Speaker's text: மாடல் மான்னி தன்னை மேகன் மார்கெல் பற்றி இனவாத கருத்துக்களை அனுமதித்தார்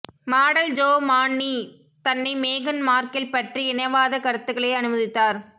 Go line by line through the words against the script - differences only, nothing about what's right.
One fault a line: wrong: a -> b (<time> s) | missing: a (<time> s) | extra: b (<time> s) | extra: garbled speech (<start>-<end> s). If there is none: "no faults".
extra: ஜோ (0.7 s)